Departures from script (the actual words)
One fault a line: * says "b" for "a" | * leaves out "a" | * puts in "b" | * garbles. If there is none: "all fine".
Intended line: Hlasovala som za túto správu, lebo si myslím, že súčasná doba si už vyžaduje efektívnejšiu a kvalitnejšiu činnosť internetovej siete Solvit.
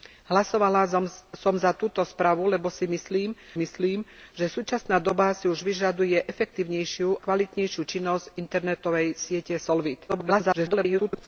* puts in "myslím"
* leaves out "a"
* garbles